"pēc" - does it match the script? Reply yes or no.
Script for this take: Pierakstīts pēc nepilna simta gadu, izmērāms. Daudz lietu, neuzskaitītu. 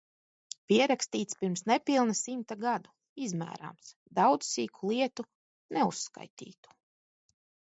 no